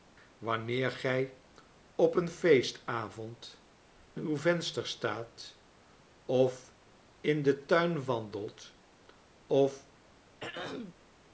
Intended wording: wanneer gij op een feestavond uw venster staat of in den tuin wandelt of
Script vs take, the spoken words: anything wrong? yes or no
no